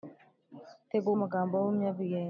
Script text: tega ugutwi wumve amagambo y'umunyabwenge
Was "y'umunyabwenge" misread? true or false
false